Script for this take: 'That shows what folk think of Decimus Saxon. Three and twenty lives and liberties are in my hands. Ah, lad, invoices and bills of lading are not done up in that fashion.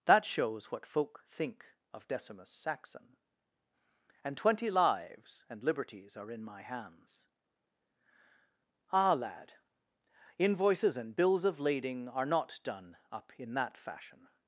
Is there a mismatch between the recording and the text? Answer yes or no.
yes